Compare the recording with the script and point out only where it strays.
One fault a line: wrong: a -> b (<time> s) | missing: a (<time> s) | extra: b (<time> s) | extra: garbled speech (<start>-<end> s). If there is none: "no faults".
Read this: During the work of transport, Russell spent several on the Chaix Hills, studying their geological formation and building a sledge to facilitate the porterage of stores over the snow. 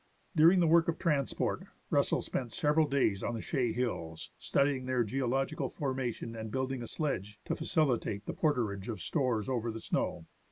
extra: days (2.9 s)